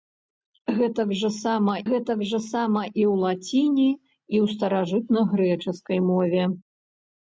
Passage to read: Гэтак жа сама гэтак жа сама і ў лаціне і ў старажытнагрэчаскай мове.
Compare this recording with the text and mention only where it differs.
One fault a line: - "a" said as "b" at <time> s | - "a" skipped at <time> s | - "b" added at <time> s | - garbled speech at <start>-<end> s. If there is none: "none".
none